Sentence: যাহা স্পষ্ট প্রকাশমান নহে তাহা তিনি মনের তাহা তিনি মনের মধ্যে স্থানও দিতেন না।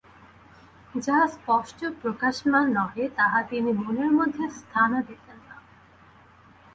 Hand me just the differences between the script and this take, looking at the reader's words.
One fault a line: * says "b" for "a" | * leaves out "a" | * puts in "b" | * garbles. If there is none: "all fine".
* leaves out "তাহা তিনি মনের"